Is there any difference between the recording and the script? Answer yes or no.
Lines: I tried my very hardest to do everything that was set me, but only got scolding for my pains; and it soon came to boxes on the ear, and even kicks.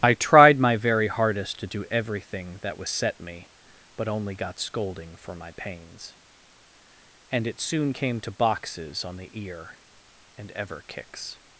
yes